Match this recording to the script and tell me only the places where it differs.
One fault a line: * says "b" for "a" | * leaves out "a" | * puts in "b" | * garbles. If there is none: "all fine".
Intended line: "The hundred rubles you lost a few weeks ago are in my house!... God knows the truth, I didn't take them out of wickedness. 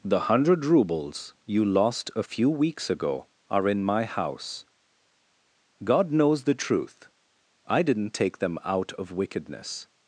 all fine